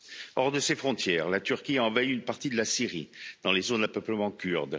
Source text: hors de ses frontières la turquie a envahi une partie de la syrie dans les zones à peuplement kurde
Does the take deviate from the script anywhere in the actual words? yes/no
no